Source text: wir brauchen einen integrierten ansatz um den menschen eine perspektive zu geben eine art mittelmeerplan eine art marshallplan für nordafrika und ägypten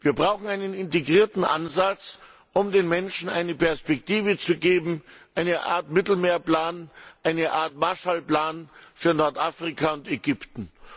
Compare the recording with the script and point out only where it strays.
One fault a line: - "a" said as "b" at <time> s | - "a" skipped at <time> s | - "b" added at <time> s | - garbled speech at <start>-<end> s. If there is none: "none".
none